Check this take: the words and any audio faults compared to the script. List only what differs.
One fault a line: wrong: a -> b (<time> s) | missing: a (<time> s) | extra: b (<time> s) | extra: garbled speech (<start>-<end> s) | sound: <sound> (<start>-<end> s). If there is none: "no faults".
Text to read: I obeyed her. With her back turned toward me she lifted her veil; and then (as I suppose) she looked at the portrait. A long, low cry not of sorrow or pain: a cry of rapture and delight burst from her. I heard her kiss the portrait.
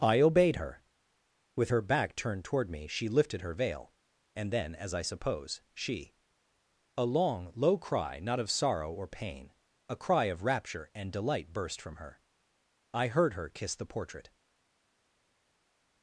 missing: looked at the portrait (6.1 s)